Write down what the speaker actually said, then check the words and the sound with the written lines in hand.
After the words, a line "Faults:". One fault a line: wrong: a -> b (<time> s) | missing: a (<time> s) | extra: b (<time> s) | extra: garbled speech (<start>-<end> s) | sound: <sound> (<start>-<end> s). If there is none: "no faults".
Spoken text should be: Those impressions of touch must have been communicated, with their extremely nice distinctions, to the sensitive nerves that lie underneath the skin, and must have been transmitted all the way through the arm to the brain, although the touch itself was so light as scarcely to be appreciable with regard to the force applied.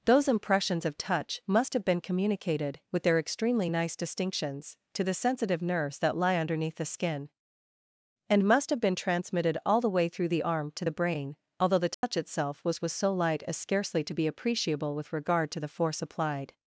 Those impressions of touch must have been communicated, with their extremely nice distinctions, to the sensitive nerves that lie underneath the skin, and must have been transmitted all the way through the arm to the brain, although the touch itself was was so light as scarcely to be appreciable with regard to the force applied.
Faults:
sound: dropout (11.9-12.0 s)
extra: was (12.8 s)